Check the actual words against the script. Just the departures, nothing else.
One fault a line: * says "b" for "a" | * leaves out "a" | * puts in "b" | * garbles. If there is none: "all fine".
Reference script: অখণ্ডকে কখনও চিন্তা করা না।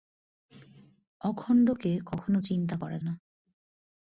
all fine